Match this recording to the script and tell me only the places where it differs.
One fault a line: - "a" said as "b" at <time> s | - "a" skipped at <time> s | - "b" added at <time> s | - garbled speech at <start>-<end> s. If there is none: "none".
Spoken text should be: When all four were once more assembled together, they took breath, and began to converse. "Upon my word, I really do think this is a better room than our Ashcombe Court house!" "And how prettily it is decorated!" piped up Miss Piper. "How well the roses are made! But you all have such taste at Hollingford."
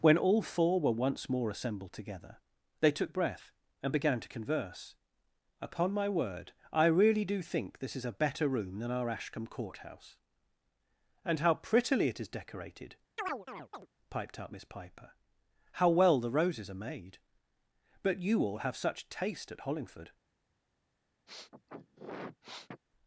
none